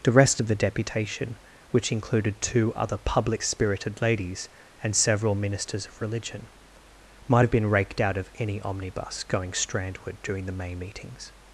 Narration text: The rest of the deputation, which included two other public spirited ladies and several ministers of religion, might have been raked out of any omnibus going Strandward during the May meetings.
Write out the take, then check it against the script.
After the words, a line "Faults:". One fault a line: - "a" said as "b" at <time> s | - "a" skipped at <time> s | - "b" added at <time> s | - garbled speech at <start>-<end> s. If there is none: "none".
The rest of the deputation, which included two other public spirited ladies and several ministers of religion, might have been raked out of any omnibus going Strandward during the May meetings.
Faults:
none